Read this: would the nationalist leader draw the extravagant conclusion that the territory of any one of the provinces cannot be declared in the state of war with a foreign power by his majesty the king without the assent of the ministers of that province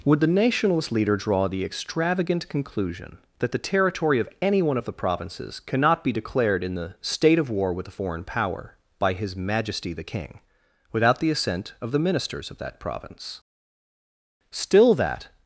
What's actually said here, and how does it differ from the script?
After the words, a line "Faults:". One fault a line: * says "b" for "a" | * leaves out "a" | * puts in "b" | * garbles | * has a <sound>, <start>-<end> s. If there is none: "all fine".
would the nationalist leader draw the extravagant conclusion that the territory of any one of the provinces cannot be declared in the state of war with a foreign power by his majesty the king without the assent of the ministers of that province still that
Faults:
* puts in "still that"